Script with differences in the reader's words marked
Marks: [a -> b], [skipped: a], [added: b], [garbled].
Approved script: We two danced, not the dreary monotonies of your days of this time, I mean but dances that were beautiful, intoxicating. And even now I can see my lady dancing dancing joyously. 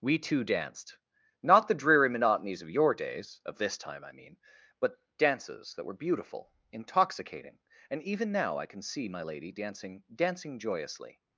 We two danced, not the dreary monotonies of your days of this time, I mean but dances that were beautiful, intoxicating. And even now I can see my lady dancing dancing joyously.